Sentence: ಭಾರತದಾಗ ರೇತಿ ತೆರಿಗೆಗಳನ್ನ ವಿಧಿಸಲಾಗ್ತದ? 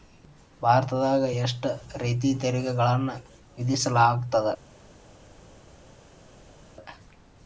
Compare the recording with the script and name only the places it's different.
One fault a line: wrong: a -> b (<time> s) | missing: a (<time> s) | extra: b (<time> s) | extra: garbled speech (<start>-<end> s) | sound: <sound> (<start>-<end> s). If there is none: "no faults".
extra: ಎಷ್ಟ (1.4 s)